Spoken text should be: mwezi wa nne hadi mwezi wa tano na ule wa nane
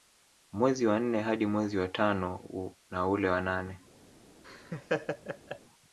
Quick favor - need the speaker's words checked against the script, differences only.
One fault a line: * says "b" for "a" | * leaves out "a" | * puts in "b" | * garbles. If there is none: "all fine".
all fine